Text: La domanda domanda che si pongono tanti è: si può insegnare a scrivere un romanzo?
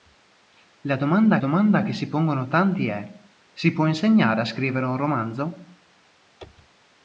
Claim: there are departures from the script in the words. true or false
false